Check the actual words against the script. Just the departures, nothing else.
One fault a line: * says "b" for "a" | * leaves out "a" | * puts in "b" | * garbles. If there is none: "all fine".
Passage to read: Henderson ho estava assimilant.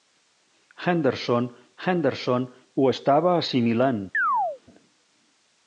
* puts in "henderson"